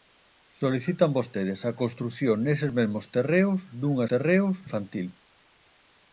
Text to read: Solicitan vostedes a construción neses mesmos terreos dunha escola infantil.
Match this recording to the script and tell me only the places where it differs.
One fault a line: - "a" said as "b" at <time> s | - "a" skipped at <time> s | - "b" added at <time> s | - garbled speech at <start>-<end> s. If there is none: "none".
- "escola" said as "terreos" at 4.1 s